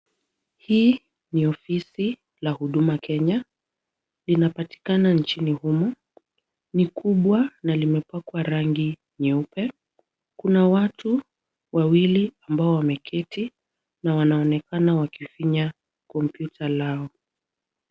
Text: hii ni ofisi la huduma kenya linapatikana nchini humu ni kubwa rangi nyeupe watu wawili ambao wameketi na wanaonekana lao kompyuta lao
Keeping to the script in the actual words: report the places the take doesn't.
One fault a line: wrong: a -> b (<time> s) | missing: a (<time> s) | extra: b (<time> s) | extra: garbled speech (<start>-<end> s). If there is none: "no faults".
extra: na limepakwa (7.6 s)
extra: kuna (10.4 s)
wrong: lao -> wakifinya (14.9 s)